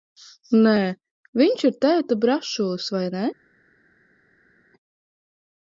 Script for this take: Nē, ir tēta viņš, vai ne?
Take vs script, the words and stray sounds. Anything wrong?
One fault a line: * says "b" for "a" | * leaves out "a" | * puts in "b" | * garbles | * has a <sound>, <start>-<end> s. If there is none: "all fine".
* puts in "viņš"
* says "brašulis" for "viņš"